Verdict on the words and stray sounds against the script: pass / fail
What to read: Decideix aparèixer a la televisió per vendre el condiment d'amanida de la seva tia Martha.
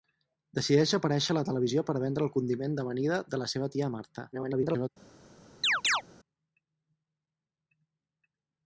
fail